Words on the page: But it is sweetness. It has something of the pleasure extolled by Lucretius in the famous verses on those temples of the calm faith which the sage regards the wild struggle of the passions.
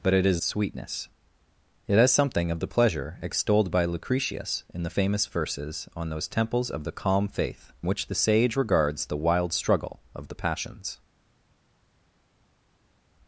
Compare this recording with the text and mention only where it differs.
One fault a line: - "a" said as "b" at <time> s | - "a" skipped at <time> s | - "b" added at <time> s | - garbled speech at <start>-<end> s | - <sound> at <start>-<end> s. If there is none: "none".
none